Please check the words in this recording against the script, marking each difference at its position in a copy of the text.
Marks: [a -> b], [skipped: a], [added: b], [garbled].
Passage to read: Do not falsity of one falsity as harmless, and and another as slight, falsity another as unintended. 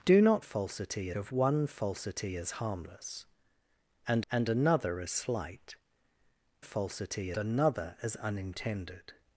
Do not falsity of one falsity as harmless, and and another as slight, falsity another as unintended.